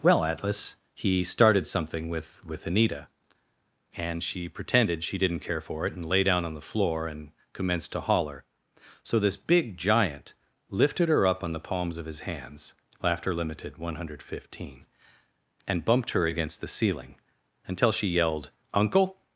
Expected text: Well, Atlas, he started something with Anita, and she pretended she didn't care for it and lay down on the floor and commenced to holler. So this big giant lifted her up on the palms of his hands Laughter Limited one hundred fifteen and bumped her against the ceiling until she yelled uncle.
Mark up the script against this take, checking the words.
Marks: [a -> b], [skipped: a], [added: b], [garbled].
Well, Atlas, he started something with [added: with] Anita, and she pretended she didn't care for it and lay down on the floor and commenced to holler. So this big giant lifted her up on the palms of his hands Laughter Limited one hundred fifteen and bumped her against the ceiling until she yelled uncle.